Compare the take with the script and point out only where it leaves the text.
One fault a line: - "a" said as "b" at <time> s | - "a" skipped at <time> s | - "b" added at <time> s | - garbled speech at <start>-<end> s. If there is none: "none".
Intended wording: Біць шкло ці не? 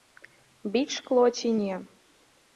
none